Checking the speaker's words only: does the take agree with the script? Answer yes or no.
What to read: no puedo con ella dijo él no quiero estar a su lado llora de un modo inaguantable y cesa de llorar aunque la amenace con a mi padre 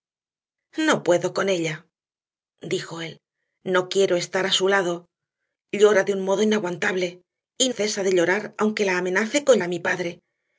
yes